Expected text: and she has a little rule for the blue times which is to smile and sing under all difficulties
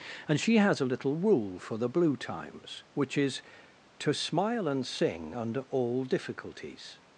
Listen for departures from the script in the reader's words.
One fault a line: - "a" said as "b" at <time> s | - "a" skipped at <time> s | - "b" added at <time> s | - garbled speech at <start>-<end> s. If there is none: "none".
none